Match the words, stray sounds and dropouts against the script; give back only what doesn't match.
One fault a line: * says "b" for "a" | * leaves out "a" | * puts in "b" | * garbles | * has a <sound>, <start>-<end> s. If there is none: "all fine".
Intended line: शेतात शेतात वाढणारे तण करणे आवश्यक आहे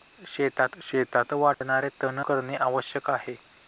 * has a dropout, 1.5-1.6 s